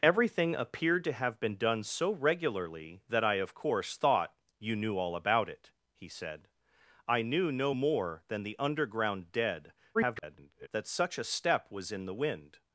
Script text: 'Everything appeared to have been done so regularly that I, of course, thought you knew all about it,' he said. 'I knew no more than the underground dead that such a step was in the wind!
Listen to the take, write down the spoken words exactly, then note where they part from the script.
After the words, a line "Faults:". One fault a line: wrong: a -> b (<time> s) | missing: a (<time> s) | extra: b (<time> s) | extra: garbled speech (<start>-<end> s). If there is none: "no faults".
'Everything appeared to have been done so regularly that I, of course, thought you knew all about it,' he said. 'I knew no more than the underground dead [garbled] that such a step was in the wind!
Faults:
extra: garbled speech (9.9-10.7 s)